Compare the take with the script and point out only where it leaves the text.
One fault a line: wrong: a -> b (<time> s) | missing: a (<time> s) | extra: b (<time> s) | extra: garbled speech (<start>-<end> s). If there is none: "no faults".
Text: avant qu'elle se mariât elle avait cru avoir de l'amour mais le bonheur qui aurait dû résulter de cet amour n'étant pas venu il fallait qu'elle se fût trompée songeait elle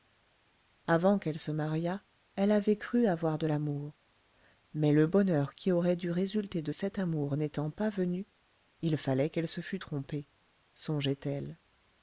no faults